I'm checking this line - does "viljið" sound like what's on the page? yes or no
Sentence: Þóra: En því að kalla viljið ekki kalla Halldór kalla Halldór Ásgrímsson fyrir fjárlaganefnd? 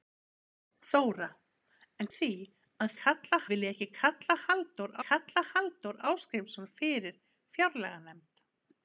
yes